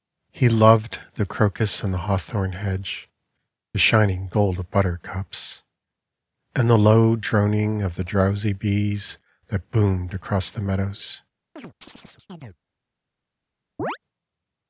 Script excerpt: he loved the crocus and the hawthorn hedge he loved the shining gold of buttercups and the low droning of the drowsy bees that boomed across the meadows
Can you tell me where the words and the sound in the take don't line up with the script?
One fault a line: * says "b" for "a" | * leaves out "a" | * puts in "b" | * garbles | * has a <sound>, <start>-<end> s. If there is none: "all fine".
* leaves out "he loved the"
* has a chirp, 11.6-12.6 s
* has a chirp, 13.8-14.0 s